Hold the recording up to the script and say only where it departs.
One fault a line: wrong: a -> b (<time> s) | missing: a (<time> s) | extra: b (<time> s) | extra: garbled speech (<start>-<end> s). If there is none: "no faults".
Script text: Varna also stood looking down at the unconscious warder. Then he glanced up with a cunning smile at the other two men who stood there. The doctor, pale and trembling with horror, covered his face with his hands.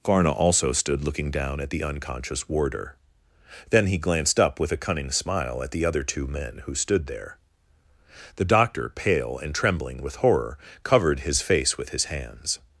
no faults